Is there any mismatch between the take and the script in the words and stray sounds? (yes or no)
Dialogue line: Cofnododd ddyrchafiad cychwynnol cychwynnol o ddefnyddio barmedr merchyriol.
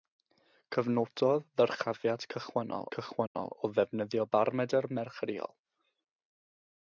yes